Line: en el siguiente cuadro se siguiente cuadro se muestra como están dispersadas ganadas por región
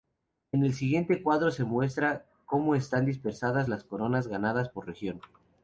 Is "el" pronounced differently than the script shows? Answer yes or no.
no